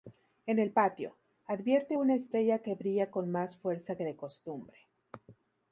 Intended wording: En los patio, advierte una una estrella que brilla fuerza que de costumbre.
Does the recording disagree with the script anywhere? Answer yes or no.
yes